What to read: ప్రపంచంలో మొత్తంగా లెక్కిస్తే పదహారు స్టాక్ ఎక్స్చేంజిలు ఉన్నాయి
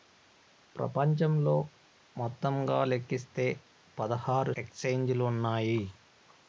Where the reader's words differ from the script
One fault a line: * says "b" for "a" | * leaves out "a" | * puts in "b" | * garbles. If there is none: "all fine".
* leaves out "స్టాక్"